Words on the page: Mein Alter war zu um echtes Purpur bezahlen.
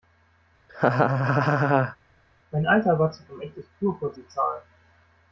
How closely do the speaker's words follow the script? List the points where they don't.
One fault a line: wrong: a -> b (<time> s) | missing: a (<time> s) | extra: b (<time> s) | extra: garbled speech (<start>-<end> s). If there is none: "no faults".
no faults